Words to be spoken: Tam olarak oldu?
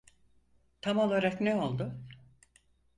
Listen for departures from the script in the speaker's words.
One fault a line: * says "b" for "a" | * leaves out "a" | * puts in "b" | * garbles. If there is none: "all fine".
* puts in "ne"